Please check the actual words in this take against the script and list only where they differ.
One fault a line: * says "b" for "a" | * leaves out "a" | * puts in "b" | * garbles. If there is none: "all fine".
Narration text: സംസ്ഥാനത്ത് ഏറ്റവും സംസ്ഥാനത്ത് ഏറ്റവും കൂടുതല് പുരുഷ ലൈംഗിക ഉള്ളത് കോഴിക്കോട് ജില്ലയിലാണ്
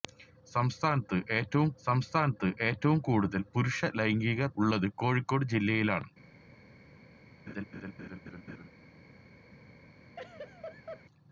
all fine